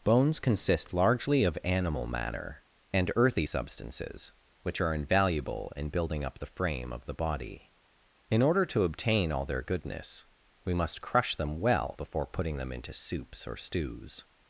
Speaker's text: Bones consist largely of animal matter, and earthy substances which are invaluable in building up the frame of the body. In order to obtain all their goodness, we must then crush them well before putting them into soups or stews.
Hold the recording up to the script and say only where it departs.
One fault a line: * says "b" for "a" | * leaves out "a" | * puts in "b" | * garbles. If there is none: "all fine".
* leaves out "then"